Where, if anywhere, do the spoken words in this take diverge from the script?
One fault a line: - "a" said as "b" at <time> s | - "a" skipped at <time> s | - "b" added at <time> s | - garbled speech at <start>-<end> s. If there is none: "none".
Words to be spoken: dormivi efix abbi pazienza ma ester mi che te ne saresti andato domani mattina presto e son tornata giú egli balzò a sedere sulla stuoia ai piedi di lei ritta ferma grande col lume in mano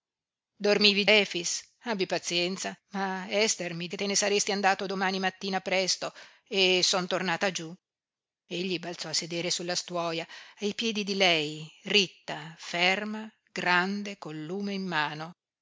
none